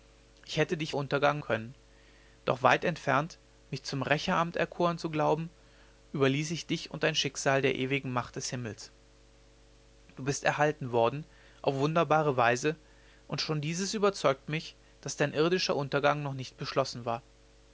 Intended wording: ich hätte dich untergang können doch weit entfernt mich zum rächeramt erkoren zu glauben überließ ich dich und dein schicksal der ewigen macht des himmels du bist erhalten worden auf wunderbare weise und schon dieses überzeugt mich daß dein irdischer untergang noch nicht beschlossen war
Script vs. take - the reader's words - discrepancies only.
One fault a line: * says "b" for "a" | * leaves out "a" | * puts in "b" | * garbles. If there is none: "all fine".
all fine